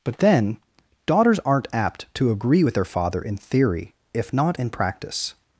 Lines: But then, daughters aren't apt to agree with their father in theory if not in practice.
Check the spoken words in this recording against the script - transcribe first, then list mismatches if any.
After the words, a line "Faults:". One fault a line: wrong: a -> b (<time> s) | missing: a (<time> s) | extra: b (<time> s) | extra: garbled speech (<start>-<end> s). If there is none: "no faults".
But then, daughters aren't apt to agree with their father in theory if not in practice.
Faults:
no faults